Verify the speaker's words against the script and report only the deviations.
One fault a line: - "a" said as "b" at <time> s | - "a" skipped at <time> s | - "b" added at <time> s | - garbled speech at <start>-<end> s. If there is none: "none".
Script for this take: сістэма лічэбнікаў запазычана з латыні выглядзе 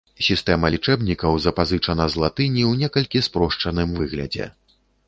- "ў некалькі спрошчаным" added at 2.7 s